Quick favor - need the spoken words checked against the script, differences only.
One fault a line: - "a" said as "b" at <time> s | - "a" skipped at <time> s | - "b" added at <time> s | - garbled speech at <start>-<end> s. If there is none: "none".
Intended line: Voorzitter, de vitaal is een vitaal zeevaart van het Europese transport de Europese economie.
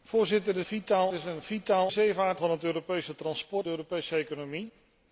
none